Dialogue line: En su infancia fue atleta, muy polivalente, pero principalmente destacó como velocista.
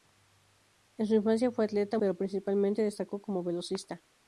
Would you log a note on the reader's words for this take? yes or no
yes